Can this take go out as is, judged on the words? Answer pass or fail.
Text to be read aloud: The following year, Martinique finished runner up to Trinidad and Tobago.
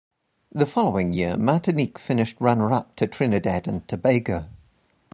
pass